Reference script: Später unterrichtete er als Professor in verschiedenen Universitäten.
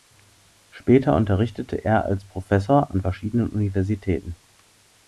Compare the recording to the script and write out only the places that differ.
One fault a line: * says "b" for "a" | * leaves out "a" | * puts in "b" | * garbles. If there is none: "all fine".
* says "an" for "in"